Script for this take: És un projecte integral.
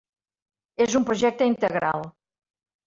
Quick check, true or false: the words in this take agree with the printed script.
true